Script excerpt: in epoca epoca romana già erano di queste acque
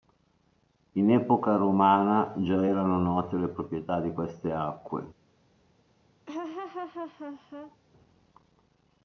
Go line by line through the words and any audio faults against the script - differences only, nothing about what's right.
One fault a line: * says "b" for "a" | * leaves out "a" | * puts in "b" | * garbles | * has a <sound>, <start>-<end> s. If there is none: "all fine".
* leaves out "epoca"
* puts in "note le proprietà"
* has a laugh, 6.3-7.8 s